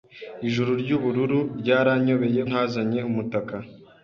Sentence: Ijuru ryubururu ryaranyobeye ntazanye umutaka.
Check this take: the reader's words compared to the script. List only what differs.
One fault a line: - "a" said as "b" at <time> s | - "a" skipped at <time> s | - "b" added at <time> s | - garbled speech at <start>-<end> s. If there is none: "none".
none